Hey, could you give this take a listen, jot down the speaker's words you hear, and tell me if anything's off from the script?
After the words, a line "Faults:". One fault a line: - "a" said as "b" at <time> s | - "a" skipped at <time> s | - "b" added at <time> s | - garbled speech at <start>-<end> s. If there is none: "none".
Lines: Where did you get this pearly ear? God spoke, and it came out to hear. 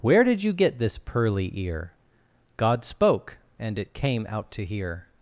Where did you get this pearly ear? God spoke, and it came out to hear.
Faults:
none